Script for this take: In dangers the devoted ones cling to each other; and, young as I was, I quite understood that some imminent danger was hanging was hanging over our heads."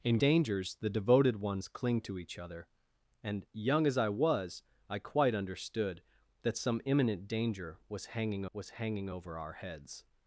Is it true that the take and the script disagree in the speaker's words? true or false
false